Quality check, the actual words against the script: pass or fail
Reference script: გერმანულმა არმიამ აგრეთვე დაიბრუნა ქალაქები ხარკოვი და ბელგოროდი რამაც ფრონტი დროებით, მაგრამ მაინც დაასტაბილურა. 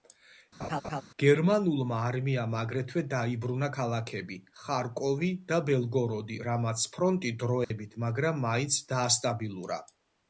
pass